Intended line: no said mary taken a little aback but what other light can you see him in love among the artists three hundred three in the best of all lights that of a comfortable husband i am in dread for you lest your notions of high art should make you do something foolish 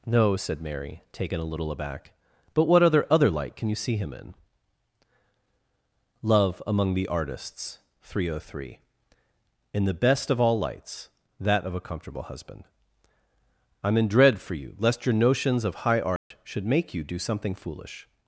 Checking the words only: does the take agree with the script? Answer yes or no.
no